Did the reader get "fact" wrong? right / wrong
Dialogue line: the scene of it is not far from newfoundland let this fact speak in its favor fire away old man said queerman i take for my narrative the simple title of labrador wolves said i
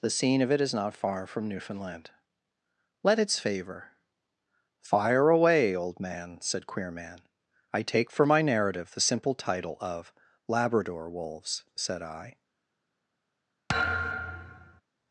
wrong